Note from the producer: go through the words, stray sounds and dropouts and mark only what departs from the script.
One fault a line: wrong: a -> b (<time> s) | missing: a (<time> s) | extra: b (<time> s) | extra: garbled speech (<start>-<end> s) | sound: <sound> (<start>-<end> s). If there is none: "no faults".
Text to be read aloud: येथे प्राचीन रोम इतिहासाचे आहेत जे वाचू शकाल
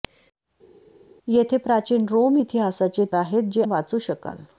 no faults